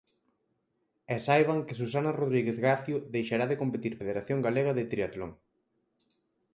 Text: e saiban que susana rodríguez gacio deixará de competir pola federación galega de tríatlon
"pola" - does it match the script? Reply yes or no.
no